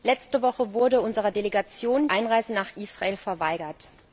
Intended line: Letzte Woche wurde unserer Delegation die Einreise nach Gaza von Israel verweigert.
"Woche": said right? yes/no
yes